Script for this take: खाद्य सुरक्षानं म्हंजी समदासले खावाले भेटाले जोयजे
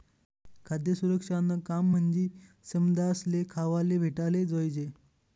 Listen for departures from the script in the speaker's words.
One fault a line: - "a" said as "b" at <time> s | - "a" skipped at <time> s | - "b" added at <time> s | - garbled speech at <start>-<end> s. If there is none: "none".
- "काम" added at 1.7 s